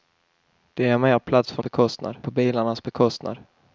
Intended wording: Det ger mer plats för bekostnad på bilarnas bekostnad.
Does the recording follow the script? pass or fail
pass